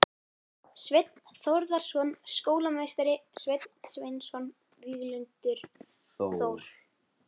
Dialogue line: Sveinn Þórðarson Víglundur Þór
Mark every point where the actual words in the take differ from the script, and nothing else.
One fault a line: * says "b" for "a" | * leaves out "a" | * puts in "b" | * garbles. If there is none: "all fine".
* puts in "skólameistari Sveinn Sveinsson"